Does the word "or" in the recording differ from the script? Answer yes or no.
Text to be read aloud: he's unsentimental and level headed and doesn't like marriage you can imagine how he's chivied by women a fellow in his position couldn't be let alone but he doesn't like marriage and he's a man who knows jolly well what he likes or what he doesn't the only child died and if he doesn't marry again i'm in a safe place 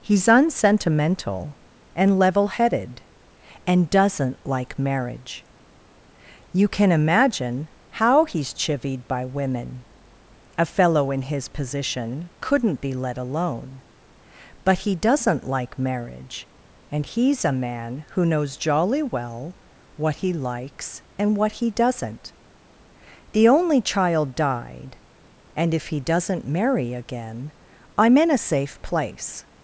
yes